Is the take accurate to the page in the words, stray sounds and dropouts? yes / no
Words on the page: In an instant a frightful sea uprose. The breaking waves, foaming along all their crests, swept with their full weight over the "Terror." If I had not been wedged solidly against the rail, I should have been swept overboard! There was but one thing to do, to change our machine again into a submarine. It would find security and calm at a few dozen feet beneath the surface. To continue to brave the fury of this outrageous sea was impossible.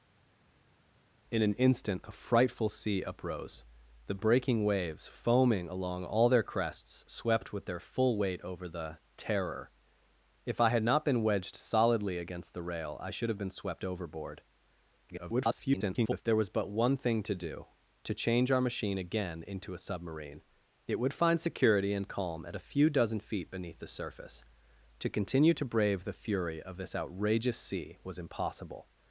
no